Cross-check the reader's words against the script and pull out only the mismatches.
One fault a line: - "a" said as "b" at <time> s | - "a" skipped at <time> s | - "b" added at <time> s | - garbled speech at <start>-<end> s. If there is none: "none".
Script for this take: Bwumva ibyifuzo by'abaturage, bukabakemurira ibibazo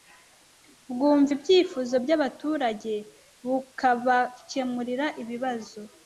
none